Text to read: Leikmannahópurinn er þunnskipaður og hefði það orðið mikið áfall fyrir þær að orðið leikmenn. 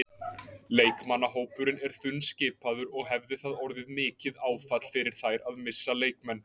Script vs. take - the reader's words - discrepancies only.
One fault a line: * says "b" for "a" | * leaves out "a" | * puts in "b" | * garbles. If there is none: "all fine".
* says "missa" for "orðið"